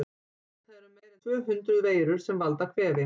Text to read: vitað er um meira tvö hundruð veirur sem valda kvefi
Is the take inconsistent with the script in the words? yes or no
no